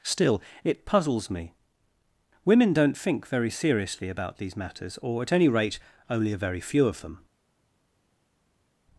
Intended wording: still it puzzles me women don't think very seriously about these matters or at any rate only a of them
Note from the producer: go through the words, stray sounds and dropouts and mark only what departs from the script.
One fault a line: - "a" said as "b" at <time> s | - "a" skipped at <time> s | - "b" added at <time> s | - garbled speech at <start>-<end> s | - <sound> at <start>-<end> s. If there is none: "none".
- "very few" added at 6.4 s